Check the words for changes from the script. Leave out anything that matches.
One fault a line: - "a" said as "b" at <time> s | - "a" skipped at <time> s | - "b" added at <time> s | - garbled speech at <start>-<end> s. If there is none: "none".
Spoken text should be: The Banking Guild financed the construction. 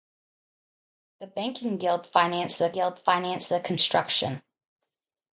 - "Guild financed the" added at 2.7 s